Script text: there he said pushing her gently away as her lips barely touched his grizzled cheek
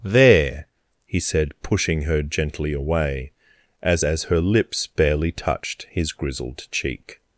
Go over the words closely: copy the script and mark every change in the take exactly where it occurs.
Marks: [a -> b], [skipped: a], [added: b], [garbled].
there he said pushing her gently away as [added: as] her lips barely touched his grizzled cheek